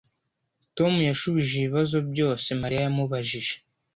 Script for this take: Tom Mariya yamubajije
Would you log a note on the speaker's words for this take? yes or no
yes